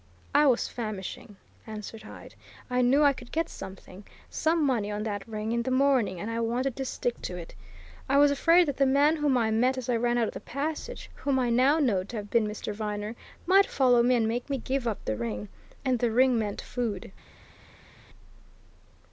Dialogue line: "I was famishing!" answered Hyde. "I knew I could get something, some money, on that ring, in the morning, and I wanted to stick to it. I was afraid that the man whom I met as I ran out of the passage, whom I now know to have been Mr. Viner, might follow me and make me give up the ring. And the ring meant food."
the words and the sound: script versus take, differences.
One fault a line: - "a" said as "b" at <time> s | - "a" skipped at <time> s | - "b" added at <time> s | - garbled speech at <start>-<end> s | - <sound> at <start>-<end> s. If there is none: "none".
none